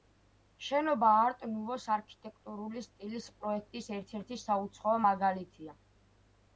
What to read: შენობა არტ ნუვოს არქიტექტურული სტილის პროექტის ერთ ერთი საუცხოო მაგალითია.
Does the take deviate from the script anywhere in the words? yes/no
no